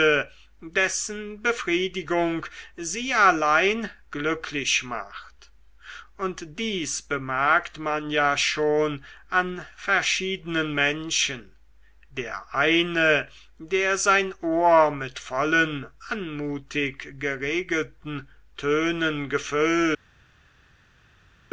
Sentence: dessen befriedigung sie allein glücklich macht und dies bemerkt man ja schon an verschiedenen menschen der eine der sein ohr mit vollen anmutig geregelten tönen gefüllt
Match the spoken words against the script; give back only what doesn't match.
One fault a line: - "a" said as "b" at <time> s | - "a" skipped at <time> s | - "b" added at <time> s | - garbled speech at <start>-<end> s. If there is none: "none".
none